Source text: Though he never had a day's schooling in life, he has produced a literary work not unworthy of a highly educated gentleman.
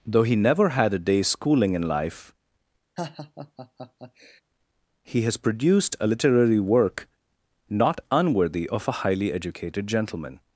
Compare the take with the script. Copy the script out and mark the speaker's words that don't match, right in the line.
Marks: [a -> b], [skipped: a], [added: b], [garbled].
Though he never had a day's schooling in life, he has produced a literary work not unworthy of a highly educated gentleman.